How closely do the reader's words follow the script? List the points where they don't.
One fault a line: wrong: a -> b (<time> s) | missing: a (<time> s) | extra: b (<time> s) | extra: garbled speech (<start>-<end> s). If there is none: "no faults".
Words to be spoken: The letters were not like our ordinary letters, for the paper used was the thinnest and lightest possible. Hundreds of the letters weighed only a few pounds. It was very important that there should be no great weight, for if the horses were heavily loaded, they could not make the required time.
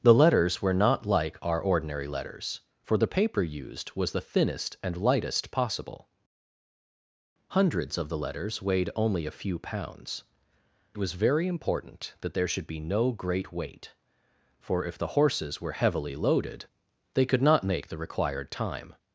missing: It (10.2 s)